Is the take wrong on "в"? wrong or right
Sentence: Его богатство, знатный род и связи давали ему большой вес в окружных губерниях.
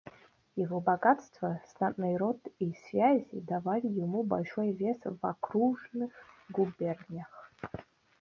right